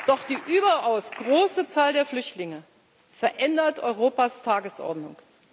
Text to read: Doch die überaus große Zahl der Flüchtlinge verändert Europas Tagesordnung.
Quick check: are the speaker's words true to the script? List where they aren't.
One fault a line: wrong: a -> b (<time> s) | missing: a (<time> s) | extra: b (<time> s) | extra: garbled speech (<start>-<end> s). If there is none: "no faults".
no faults